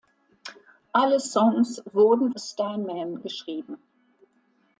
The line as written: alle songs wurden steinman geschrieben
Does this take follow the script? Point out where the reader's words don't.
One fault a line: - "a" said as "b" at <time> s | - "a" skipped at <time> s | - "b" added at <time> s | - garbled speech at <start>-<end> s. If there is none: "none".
none